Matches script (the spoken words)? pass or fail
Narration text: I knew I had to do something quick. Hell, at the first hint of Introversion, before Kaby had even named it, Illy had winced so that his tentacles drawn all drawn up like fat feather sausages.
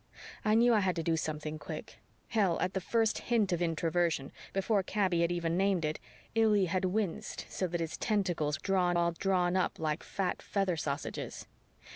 pass